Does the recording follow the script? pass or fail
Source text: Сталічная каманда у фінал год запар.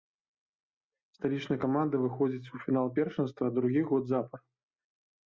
fail